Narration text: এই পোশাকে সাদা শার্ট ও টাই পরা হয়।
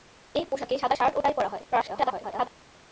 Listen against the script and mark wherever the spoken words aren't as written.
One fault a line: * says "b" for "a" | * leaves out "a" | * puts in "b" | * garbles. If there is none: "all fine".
* garbles